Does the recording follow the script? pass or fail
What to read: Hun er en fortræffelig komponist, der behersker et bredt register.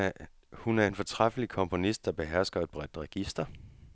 pass